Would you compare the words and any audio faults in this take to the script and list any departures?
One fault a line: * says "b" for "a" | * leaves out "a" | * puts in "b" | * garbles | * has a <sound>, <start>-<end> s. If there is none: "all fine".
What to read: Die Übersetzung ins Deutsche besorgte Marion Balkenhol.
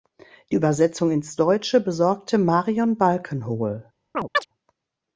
* has a chirp, 4.1-4.5 s